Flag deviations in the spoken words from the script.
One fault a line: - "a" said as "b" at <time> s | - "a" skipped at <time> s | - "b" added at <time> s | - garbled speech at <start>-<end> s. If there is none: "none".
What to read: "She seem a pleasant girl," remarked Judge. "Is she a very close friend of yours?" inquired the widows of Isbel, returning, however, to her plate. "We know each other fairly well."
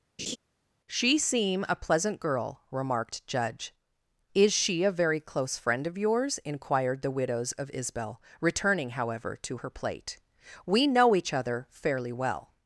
none